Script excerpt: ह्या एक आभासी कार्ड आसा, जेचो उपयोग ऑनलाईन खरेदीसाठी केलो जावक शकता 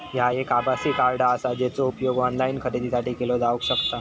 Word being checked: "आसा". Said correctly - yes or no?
yes